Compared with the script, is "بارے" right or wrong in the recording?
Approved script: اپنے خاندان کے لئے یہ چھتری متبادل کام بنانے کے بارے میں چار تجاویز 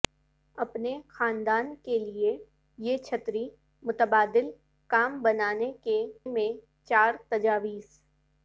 wrong